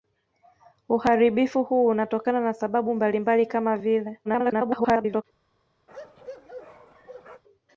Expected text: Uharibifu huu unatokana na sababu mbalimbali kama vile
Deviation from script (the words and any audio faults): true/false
true